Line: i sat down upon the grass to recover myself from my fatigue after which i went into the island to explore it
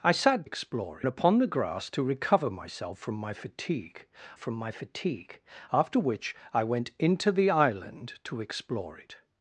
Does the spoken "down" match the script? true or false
false